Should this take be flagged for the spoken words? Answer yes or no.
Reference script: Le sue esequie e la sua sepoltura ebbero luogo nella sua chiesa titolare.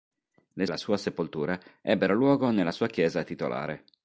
yes